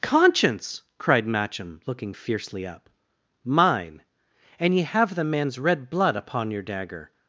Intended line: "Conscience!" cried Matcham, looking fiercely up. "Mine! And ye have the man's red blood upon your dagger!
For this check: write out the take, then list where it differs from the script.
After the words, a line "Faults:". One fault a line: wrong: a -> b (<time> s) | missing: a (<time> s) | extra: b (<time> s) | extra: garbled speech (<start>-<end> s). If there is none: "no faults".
"Conscience!" cried Matcham, looking fiercely up. "Mine! And ye have the man's red blood upon your dagger!
Faults:
no faults